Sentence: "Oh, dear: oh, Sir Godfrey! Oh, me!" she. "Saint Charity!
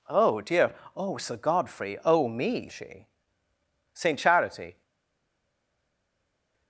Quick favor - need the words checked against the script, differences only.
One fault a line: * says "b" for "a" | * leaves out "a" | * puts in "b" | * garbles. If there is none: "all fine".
all fine